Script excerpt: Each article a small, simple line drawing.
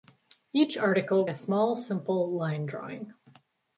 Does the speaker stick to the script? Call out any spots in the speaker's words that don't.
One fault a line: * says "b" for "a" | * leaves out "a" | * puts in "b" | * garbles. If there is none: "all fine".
all fine